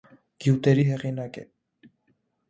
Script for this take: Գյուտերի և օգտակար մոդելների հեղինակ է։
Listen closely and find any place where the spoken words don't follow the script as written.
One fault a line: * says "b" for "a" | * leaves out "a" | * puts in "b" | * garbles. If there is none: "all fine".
* leaves out "և օգտակար մոդելների"